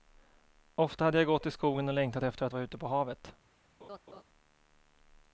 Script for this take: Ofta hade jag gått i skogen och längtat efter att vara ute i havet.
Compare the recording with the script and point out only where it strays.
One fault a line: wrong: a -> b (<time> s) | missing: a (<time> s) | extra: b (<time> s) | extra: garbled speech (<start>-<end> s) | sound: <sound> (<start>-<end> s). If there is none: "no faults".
wrong: i -> på (2.8 s)
sound: laugh (3.8-4.2 s)